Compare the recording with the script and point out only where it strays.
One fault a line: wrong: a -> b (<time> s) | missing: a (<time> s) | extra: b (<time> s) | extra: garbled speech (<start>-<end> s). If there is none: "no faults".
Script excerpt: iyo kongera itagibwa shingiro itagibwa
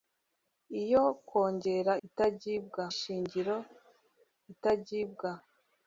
no faults